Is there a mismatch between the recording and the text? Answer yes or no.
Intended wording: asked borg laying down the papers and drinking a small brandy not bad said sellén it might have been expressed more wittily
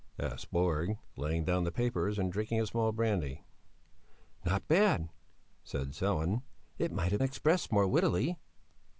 yes